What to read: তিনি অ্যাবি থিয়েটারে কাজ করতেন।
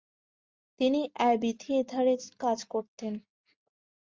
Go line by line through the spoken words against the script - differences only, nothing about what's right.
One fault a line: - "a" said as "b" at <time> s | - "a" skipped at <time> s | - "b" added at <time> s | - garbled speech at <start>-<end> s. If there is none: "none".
none